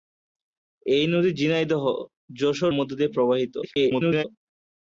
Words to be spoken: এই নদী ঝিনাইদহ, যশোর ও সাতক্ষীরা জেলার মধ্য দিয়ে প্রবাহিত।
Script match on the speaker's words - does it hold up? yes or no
no